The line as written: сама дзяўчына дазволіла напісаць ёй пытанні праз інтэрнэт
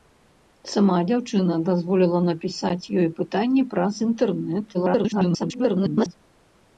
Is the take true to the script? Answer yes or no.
no